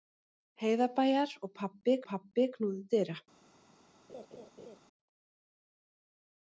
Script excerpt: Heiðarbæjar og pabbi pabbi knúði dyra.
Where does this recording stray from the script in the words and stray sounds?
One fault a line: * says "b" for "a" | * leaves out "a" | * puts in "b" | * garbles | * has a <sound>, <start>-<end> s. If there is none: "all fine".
* has a laugh, 4.1-4.8 s